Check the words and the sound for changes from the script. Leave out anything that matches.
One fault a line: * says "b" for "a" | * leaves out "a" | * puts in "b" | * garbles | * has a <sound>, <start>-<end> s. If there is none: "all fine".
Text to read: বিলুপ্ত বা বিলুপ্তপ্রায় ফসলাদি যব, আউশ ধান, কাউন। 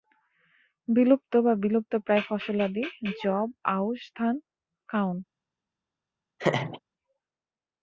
* has a laugh, 6.4-6.8 s